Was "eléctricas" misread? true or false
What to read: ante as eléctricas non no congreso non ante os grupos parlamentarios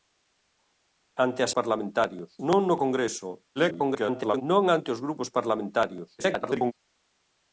true